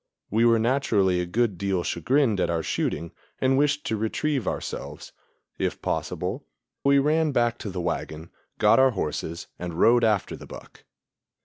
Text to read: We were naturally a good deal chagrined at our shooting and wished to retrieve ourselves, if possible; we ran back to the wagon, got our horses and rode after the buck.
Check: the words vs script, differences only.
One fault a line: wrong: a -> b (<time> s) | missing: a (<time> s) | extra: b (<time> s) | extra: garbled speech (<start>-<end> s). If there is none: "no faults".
no faults